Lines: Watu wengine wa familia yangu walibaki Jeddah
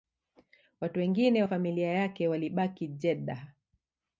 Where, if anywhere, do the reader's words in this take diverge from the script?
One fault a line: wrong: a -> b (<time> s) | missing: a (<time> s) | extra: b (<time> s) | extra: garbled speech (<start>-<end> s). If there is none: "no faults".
wrong: yangu -> yake (1.9 s)